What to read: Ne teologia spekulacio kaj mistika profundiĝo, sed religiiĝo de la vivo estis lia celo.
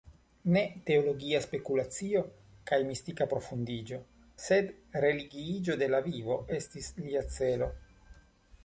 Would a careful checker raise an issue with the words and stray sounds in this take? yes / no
no